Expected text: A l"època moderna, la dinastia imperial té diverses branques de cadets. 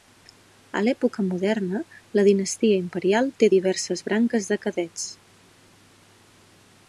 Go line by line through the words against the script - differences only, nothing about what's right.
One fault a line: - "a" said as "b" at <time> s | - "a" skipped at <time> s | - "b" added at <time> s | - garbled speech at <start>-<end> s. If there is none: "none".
none